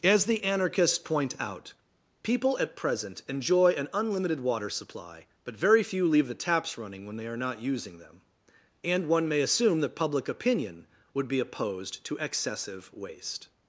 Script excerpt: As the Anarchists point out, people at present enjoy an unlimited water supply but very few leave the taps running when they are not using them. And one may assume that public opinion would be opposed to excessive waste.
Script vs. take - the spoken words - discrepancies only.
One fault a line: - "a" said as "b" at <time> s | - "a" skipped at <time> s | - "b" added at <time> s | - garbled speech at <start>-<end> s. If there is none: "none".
none